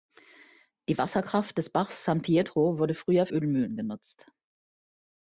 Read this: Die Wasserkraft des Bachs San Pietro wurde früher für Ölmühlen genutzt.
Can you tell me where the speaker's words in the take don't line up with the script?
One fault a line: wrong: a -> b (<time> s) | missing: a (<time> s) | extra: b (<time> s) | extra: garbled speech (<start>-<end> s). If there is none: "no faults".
missing: für (3.3 s)